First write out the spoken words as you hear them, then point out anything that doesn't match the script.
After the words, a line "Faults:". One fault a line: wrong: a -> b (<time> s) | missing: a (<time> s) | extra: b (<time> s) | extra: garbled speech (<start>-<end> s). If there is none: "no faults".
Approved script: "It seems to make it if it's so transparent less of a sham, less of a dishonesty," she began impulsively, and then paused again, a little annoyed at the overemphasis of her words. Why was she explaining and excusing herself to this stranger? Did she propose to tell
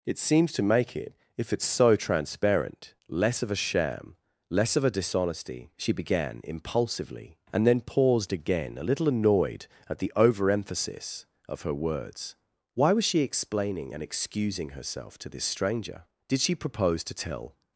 "It seems to make it if it's so transparent less of a sham, less of a dishonesty," she began impulsively, and then paused again, a little annoyed at the overemphasis of her words. Why was she explaining and excusing herself to this stranger? Did she propose to tell
Faults:
no faults